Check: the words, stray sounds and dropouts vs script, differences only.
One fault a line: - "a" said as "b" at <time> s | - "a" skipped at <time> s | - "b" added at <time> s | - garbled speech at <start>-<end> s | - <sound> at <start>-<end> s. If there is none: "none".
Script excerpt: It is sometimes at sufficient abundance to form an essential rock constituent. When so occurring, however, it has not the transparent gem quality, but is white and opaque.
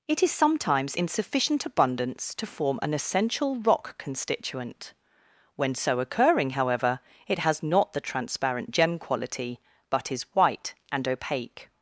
- "at" said as "in" at 0.9 s